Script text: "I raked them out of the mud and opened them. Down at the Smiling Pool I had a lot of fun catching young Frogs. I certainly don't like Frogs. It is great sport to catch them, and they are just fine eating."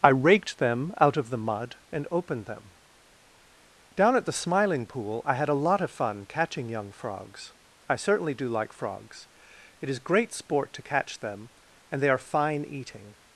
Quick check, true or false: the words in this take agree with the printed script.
false